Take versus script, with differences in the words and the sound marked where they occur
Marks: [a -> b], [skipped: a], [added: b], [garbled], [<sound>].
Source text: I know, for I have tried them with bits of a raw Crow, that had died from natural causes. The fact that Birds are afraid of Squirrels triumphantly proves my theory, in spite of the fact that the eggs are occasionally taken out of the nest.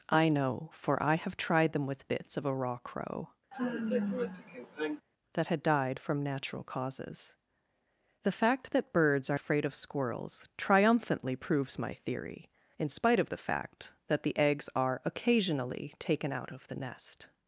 I know, for I have tried them with bits of a raw Crow, [sigh] that had died from natural causes. The fact that Birds are afraid of Squirrels triumphantly proves my theory, in spite of the fact that the eggs are occasionally taken out of the nest.